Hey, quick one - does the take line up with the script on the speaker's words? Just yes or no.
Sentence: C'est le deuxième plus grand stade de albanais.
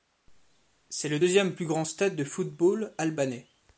no